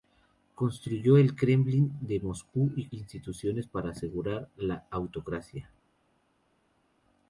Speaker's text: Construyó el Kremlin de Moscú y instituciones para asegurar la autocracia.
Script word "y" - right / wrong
right